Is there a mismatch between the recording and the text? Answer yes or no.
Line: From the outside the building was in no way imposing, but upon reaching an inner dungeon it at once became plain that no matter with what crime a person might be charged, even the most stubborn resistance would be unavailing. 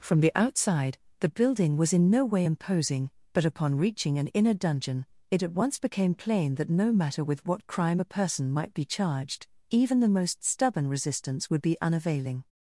no